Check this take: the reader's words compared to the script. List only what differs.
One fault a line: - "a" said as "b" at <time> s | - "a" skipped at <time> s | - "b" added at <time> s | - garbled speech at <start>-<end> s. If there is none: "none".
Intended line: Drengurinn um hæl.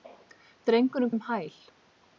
none